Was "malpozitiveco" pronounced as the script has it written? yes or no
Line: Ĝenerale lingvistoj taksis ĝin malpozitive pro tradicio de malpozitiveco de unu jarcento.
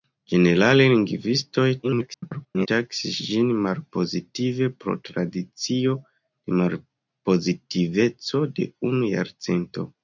yes